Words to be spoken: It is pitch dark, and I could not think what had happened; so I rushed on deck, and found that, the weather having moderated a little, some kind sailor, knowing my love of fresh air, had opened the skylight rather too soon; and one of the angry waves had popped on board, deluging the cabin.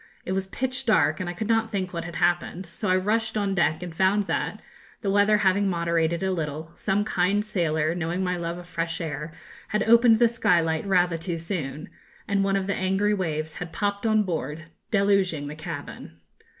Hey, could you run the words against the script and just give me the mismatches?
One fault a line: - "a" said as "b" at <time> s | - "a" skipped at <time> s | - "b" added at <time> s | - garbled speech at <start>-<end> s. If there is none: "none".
- "is" said as "was" at 0.3 s